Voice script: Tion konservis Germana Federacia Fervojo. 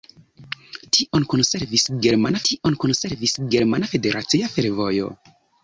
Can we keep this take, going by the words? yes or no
no